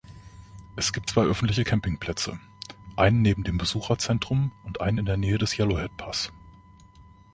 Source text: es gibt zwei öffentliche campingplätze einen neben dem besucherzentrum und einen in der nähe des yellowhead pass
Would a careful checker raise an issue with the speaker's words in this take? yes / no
no